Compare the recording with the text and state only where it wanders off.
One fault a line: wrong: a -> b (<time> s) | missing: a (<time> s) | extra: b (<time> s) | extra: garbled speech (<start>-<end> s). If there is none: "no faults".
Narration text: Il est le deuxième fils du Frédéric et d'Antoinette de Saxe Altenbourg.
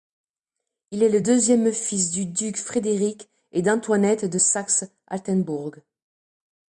extra: duc (2.2 s)